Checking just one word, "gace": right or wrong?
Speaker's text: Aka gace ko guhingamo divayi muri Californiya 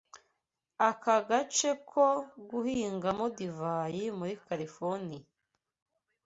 right